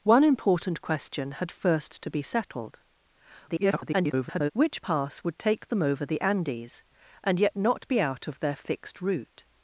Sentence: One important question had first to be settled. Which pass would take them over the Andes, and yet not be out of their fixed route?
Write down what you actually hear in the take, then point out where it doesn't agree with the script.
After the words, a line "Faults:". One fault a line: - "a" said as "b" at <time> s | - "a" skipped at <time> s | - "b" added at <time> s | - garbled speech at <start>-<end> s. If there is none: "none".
One important question had first to be settled. [garbled] Which pass would take them over the Andes, and yet not be out of their fixed route?
Faults:
- garbled speech at 3.5-4.5 s